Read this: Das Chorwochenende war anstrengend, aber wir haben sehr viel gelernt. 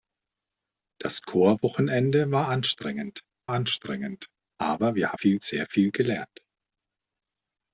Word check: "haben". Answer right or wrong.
wrong